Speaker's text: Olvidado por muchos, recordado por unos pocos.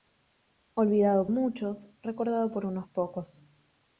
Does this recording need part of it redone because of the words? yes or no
yes